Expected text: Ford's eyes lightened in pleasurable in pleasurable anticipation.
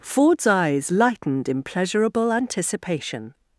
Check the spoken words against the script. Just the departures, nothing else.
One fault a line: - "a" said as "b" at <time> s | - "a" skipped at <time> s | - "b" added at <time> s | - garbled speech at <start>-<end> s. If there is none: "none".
- "in pleasurable" skipped at 2.3 s